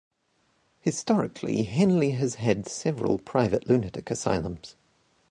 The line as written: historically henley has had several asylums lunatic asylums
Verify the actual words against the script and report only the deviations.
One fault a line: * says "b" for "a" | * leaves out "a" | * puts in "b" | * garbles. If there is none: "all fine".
* says "private" for "asylums"